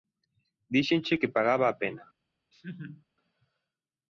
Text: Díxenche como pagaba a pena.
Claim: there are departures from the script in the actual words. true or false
true